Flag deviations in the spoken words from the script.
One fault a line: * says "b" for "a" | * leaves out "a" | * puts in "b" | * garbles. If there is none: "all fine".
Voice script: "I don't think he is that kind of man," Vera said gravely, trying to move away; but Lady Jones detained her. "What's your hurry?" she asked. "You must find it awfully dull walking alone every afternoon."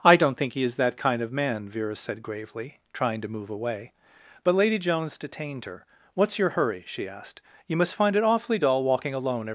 * leaves out "afternoon"